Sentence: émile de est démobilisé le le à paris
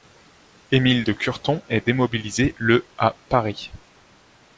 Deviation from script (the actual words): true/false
true